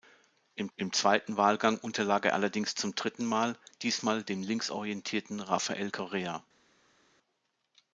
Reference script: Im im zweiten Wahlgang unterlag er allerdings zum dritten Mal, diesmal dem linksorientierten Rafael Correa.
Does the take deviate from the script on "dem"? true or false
false